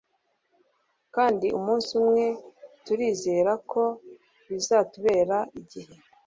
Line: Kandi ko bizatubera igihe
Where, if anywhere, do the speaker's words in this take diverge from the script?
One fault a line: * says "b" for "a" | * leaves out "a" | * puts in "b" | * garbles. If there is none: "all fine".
* puts in "umunsi umwe turizera"